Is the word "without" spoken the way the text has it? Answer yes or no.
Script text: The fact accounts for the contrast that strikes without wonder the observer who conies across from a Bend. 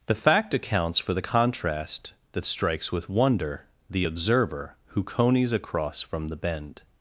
no